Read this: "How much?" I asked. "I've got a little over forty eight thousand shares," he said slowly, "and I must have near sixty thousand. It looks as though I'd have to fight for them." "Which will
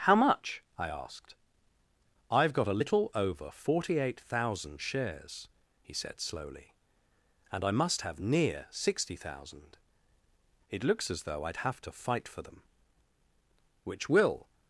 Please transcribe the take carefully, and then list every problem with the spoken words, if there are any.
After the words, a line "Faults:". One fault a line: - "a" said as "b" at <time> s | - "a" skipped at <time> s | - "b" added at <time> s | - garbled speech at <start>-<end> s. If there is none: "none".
"How much?" I asked. "I've got a little over forty eight thousand shares," he said slowly, "and I must have near sixty thousand. It looks as though I'd have to fight for them." "Which will
Faults:
none